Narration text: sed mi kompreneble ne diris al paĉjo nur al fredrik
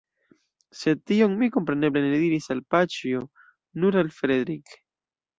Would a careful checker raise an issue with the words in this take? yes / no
yes